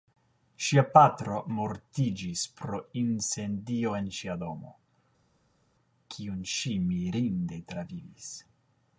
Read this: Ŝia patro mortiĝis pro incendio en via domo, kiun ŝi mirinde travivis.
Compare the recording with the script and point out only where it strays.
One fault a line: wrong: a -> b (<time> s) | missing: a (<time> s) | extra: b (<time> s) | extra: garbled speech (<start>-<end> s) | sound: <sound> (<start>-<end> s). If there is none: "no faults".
wrong: via -> ŝia (4.2 s)